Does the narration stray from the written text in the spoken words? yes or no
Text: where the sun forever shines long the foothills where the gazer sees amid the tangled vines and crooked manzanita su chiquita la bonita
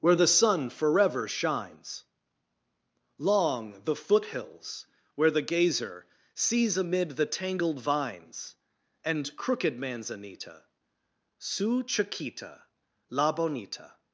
no